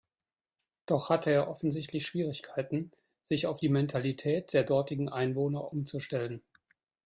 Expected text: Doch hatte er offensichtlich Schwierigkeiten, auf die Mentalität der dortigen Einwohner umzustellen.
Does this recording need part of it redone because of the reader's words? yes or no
yes